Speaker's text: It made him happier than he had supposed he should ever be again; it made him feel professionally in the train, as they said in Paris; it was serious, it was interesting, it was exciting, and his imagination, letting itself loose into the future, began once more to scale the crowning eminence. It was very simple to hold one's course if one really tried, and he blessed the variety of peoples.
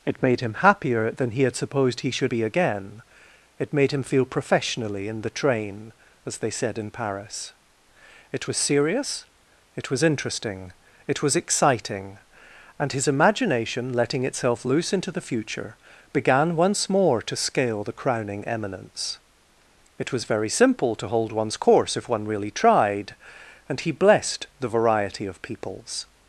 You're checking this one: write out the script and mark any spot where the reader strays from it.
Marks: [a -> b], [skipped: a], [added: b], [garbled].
It made him happier than he had supposed he should [skipped: ever] be again; it made him feel professionally in the train, as they said in Paris; it was serious, it was interesting, it was exciting, and his imagination, letting itself loose into the future, began once more to scale the crowning eminence. It was very simple to hold one's course if one really tried, and he blessed the variety of peoples.